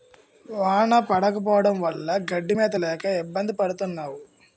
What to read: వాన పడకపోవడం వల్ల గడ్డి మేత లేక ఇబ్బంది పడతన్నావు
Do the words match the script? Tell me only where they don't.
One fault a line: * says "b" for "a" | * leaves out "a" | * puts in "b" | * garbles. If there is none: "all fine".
all fine